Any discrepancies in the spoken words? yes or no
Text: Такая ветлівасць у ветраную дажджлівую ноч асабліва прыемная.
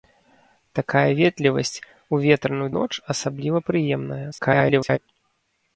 yes